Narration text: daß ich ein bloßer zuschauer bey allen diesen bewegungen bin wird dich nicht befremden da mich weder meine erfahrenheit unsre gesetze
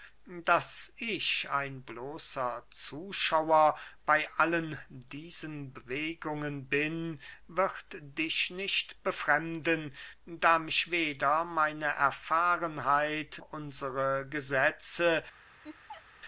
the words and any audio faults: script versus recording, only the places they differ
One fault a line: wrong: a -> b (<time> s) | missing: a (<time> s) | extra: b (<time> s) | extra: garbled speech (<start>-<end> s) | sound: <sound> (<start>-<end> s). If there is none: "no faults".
sound: laugh (15.6-16.0 s)